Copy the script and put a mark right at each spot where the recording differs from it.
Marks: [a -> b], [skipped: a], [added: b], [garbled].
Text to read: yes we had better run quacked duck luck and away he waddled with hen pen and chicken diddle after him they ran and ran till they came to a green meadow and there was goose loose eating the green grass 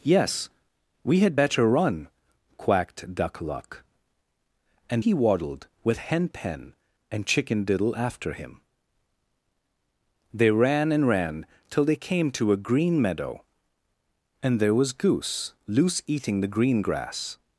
yes we had better run quacked duck luck and [skipped: away] he waddled with hen pen and chicken diddle after him they ran and ran till they came to a green meadow and there was goose loose eating the green grass